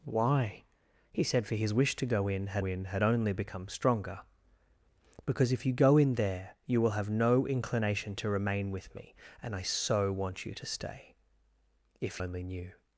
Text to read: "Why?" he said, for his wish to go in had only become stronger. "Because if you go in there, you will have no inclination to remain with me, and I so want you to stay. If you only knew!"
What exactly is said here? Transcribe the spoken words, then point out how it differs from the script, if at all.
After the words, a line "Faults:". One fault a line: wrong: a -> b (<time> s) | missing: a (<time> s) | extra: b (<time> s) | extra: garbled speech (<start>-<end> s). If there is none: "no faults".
"Why?" he said, for his wish to go in had in had only become stronger. "Because if you go in there, you will have no inclination to remain with me, and I so want you to stay. If only knew!"
Faults:
extra: in had (2.6 s)
missing: you (12.2 s)